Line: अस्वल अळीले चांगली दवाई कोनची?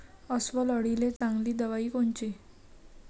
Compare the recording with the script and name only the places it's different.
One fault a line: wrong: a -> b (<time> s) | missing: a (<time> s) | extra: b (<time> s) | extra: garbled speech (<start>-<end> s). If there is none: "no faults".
no faults